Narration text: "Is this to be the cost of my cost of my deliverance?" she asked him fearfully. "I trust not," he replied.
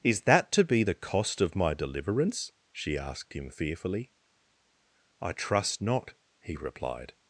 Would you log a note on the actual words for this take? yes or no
yes